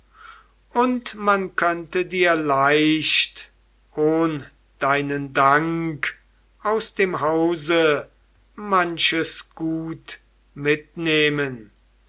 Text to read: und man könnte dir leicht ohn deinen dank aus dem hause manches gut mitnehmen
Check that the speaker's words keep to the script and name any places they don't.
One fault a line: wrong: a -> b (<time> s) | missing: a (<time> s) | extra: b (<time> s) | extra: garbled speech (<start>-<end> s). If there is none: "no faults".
no faults